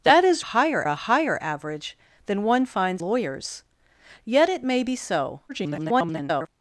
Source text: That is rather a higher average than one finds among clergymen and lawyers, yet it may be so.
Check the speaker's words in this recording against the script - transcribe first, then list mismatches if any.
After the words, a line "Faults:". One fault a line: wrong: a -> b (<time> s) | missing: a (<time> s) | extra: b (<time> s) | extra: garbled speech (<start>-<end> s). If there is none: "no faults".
That is higher a higher average than one finds lawyers, yet it may be so. [garbled]
Faults:
wrong: rather -> higher (0.4 s)
missing: among clergymen and (3.0 s)
extra: garbled speech (5.5-6.5 s)